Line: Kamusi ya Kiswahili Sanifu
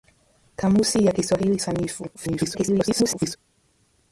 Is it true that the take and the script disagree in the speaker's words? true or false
true